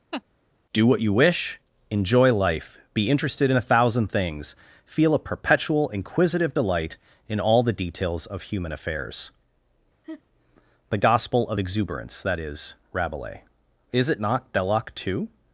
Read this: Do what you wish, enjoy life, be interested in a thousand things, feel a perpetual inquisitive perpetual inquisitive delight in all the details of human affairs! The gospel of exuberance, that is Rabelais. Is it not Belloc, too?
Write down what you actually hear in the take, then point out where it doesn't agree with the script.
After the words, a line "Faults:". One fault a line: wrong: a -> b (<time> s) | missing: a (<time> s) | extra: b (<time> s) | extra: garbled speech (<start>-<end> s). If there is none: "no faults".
Do what you wish, enjoy life, be interested in a thousand things, feel a perpetual inquisitive delight in all the details of human affairs! The gospel of exuberance, that is Rabelais. Is it not Belloc, too?
Faults:
missing: perpetual inquisitive (6.6 s)